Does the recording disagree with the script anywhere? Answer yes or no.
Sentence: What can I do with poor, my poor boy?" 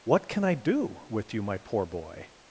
yes